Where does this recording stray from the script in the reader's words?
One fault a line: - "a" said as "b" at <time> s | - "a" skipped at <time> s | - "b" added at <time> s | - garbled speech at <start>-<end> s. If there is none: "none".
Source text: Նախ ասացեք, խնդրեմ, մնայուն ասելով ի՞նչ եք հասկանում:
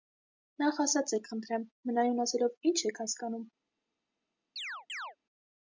none